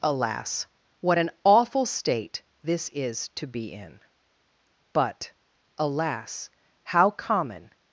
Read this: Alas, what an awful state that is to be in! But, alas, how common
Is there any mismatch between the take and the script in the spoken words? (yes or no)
yes